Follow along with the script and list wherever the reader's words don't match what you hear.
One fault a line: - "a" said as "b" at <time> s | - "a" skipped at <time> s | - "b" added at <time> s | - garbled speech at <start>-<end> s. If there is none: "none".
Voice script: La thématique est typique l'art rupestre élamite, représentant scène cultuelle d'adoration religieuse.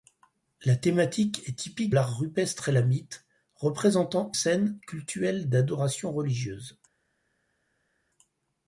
none